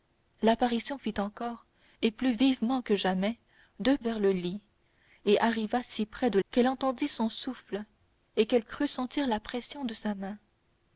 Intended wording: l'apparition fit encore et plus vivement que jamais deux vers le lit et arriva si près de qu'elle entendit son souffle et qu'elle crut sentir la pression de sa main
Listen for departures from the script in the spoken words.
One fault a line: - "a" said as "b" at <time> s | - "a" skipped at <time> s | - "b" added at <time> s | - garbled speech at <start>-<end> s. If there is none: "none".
none